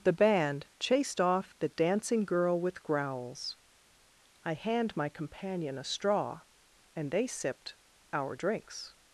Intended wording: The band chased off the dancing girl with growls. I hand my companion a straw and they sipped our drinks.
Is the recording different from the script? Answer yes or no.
no